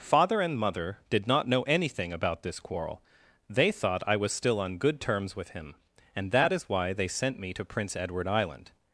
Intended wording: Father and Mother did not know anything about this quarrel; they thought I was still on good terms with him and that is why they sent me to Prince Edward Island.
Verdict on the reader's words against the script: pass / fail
pass